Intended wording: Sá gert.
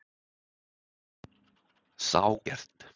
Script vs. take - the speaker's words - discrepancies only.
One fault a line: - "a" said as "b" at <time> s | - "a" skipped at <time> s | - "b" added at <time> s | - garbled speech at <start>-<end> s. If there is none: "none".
none